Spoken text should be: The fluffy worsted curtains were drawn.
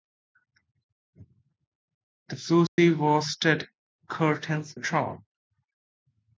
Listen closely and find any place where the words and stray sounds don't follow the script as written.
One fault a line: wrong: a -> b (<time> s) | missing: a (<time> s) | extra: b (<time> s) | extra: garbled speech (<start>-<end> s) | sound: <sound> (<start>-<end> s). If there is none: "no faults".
sound: dropout (2.7-2.8 s)
missing: were (4.8 s)